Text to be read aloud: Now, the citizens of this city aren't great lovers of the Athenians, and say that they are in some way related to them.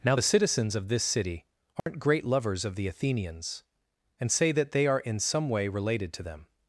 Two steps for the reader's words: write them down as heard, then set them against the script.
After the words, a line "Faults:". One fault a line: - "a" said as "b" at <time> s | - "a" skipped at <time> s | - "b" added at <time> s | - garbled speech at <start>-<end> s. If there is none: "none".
Now, the citizens of this city aren't great lovers of the Athenians, and say that they are in some way related to them.
Faults:
none